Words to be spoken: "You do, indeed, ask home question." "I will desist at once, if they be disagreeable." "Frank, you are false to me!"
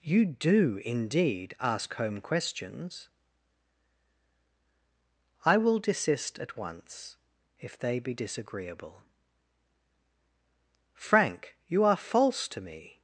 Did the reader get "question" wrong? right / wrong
wrong